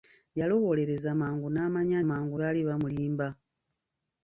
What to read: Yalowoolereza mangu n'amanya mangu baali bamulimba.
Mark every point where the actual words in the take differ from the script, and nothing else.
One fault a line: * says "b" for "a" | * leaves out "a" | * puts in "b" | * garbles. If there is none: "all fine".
all fine